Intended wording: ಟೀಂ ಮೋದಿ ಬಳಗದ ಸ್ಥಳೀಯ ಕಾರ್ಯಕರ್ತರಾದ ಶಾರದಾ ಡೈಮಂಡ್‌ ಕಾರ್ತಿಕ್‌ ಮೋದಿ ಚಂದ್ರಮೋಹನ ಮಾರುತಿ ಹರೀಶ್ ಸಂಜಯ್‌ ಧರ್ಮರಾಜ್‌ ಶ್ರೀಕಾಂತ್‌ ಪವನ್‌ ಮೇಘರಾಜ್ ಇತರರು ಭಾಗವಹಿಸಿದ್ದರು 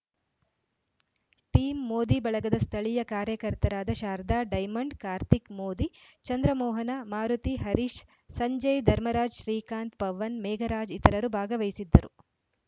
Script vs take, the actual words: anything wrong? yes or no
no